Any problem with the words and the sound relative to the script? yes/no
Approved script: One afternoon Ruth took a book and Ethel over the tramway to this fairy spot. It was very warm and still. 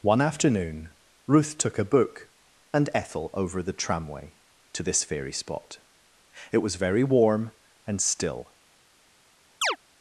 yes